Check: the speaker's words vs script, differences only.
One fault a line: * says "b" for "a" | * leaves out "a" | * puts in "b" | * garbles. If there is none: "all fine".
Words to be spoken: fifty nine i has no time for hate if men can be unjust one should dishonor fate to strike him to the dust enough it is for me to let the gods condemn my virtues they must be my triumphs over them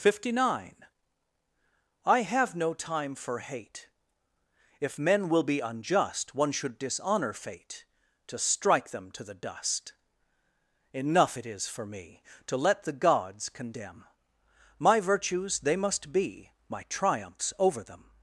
* says "have" for "has"
* says "will" for "can"
* says "them" for "him"